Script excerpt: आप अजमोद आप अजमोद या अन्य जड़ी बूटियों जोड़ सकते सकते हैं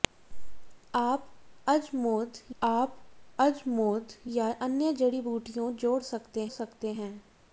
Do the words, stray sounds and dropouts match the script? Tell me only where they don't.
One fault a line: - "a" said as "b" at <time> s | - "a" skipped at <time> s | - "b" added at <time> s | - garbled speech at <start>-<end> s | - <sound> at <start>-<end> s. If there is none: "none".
none